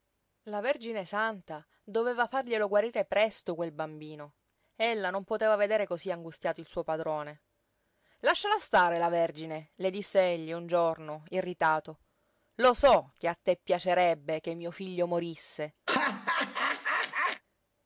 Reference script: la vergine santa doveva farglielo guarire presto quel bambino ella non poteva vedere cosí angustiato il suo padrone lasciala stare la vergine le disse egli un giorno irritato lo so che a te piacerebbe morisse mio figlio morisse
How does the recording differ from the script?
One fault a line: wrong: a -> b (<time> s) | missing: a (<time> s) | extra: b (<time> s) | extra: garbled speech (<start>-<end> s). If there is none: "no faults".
wrong: morisse -> che (14.4 s)